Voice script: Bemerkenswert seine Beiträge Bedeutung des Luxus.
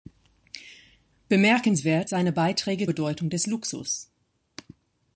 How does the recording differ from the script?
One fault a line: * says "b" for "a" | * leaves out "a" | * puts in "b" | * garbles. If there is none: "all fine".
all fine